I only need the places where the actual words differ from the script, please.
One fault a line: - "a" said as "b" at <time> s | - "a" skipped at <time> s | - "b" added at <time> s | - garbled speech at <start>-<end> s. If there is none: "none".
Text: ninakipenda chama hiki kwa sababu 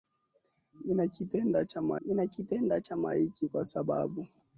- "ninakipenda chama" added at 2.1 s